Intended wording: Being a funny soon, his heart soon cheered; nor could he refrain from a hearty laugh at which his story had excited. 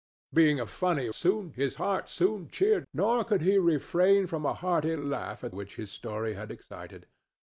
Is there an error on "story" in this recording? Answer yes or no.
no